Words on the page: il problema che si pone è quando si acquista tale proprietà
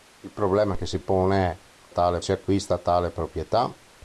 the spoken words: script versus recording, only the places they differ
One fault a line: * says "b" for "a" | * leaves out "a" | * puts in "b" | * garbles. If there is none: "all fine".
* says "tale" for "quando"